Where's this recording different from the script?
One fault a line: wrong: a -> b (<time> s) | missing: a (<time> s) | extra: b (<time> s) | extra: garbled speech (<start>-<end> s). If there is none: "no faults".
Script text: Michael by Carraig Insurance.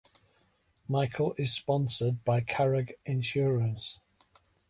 extra: is sponsored (1.4 s)